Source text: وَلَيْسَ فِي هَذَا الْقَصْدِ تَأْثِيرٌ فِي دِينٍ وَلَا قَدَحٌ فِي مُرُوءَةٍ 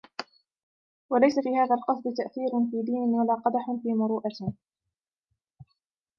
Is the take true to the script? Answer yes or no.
yes